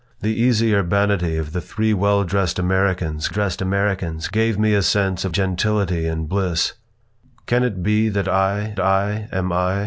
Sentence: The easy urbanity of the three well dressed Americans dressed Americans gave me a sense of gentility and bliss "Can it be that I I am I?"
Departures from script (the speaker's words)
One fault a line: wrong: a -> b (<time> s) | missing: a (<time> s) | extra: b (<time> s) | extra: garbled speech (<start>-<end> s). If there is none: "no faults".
no faults